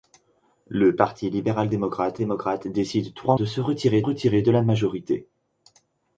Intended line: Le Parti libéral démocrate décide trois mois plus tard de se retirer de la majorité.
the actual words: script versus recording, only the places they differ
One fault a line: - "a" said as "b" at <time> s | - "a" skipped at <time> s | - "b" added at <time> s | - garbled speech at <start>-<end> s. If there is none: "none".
- "démocrate" added at 2.2 s
- "mois plus tard" skipped at 3.4 s
- "retirer" added at 4.0 s